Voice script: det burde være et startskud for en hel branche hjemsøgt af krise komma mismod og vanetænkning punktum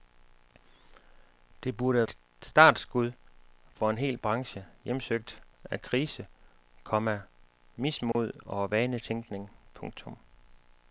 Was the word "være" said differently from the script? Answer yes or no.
yes